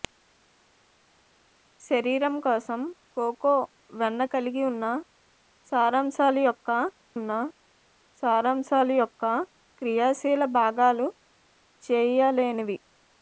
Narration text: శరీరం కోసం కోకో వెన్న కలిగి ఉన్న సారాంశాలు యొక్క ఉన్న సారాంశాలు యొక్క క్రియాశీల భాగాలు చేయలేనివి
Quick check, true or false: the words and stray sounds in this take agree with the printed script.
true